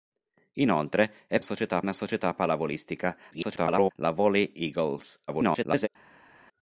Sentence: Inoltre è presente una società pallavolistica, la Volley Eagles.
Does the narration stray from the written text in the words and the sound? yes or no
yes